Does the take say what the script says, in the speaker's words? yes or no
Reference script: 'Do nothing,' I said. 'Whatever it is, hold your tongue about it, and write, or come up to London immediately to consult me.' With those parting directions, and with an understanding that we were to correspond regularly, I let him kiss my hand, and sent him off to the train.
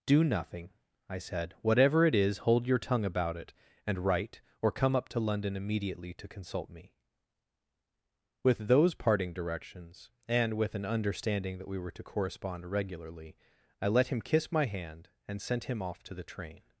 yes